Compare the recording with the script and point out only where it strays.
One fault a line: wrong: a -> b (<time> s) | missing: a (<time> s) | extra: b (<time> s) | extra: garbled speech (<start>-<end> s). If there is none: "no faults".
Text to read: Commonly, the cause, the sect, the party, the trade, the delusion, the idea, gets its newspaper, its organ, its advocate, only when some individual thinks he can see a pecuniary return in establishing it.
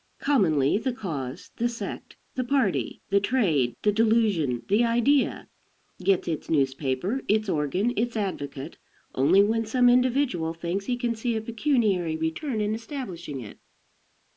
no faults